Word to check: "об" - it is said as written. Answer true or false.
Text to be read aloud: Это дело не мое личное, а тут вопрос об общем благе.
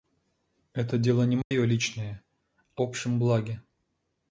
false